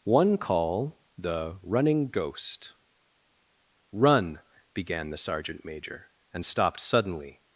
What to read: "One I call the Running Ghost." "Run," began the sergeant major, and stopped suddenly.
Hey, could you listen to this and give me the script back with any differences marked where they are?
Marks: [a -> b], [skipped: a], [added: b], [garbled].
"One [skipped: I] call the Running Ghost." "Run," began the sergeant major, and stopped suddenly.